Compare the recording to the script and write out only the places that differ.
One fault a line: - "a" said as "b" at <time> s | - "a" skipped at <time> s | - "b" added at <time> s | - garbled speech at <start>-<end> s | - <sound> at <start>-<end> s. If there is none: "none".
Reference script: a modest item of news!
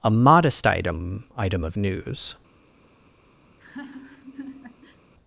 - "item" added at 1.4 s
- laugh at 3.5-5.0 s